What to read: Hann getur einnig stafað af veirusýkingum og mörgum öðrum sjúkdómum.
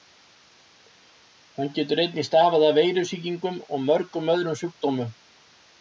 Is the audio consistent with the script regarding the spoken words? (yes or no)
yes